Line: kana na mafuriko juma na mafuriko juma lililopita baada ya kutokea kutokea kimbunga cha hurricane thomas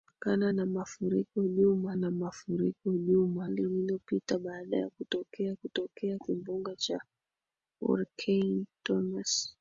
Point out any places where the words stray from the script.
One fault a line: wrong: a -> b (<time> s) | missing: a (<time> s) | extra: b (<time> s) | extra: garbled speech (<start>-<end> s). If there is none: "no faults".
no faults